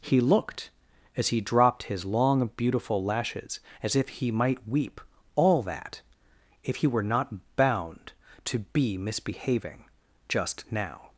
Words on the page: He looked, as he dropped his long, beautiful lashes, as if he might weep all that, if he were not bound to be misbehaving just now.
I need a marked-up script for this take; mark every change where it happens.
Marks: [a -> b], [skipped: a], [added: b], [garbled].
He looked, as he dropped his long, beautiful lashes, as if he might weep all that, if he were not bound to be misbehaving just now.